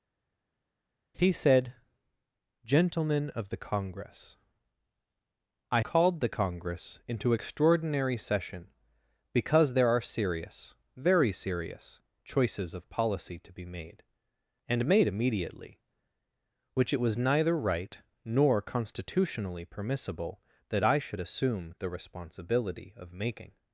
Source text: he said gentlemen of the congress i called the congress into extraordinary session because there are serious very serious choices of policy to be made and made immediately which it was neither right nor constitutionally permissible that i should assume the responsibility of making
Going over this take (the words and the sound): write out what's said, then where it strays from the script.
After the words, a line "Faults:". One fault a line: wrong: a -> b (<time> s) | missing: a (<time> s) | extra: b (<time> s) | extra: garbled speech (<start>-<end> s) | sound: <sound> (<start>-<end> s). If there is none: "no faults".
he said gentlemen of the congress i called the congress into extraordinary session because there are serious very serious choices of policy to be made and made immediately which it was neither right nor constitutionally permissible that i should assume the responsibility of making
Faults:
no faults